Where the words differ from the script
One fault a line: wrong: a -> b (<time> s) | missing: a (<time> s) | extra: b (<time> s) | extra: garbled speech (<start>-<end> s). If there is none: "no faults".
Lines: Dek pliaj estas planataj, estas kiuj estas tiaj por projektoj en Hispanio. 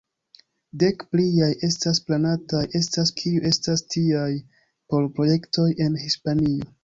no faults